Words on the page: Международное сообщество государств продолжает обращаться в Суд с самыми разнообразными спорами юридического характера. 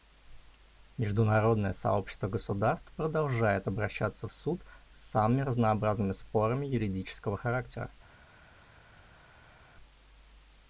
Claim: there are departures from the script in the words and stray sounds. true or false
false